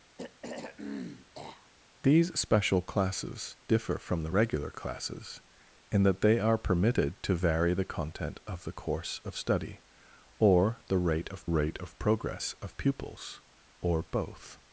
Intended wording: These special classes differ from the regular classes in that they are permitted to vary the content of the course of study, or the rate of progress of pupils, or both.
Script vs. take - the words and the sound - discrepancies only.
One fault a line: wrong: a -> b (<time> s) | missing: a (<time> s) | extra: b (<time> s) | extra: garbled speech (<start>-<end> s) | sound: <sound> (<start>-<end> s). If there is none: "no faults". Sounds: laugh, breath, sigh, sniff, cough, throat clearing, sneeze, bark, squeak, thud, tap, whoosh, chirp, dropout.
sound: throat clearing (0.2-1.7 s)
extra: rate of (11.4 s)